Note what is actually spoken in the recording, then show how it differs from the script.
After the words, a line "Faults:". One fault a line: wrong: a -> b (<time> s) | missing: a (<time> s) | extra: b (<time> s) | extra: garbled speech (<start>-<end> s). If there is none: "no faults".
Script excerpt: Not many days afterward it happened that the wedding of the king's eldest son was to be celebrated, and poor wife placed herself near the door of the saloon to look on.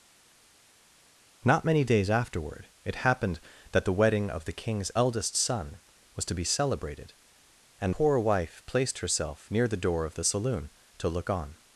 Not many days afterward it happened that the wedding of the king's eldest son was to be celebrated, and poor wife placed herself near the door of the saloon to look on.
Faults:
no faults